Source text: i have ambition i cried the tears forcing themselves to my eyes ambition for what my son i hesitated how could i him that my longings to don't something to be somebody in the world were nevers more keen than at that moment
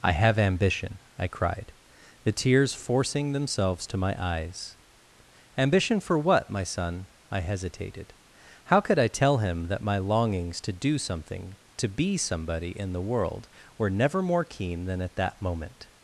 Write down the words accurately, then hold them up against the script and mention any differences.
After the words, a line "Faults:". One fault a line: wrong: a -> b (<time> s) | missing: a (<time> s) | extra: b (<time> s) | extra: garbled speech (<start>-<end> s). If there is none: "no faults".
i have ambition i cried the tears forcing themselves to my eyes ambition for what my son i hesitated how could i tell him that my longings to do something to be somebody in the world were never more keen than at that moment
Faults:
extra: tell (9.1 s)
wrong: don't -> do (10.7 s)
wrong: nevers -> never (13.9 s)